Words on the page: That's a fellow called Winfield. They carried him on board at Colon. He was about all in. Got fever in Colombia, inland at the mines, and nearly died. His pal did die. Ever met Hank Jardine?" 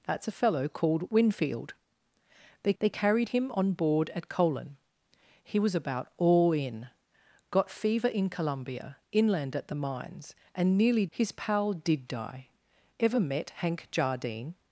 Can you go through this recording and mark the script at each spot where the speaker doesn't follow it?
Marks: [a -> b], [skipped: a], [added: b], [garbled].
That's a fellow called Winfield. They [added: they] carried him on board at Colon. He was about all in. Got fever in Colombia, inland at the mines, and nearly [skipped: died.] His pal did die. Ever met Hank Jardine?"